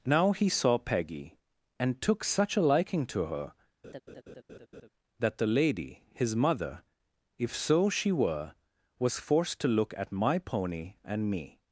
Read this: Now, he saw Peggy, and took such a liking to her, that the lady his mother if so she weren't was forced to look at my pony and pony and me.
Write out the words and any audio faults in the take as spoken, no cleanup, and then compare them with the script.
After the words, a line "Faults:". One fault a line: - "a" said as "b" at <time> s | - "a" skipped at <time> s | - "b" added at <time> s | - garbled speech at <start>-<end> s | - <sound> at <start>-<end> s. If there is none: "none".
Now, he saw Peggy, and took such a liking to her, that the lady his mother if so she were was forced to look at my pony and me.
Faults:
- laugh at 3.8-4.9 s
- "weren't" said as "were" at 8.1 s
- "pony and" skipped at 11.3 s